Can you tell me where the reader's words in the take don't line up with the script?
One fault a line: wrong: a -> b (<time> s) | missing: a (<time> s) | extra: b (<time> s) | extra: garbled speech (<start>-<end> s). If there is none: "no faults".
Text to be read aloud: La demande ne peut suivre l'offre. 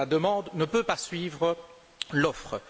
extra: pas (0.8 s)